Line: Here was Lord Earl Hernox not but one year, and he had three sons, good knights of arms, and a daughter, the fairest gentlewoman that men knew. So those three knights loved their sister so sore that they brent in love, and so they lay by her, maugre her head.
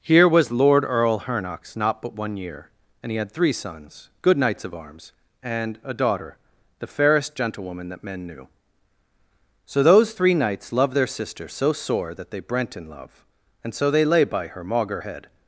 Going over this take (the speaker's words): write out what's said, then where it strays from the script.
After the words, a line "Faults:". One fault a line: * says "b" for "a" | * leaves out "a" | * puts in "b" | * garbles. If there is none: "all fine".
Here was Lord Earl Hernox not but one year, and he had three sons, good knights of arms, and a daughter, the fairest gentlewoman that men knew. So those three knights loved their sister so sore that they brent in love, and so they lay by her, maugre head.
Faults:
* leaves out "her"